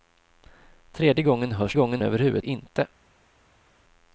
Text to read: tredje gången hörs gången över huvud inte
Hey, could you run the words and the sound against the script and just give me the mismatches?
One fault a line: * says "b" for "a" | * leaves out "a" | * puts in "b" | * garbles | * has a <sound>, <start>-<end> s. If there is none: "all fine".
all fine